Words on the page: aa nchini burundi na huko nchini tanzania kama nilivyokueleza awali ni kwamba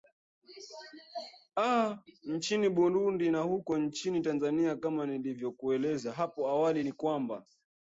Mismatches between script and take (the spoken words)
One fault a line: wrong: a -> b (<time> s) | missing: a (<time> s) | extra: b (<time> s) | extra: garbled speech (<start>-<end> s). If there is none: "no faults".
extra: hapo (6.1 s)